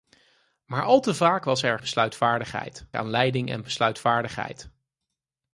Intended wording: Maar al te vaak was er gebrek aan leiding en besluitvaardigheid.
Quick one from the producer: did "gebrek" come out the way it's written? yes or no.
no